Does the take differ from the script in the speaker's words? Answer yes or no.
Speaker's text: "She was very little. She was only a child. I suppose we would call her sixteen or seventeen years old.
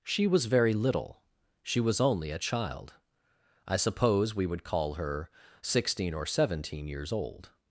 no